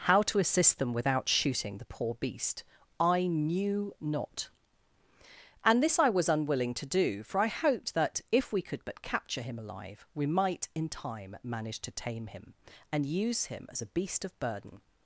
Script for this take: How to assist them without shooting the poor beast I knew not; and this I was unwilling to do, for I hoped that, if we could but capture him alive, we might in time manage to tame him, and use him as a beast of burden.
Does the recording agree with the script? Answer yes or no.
yes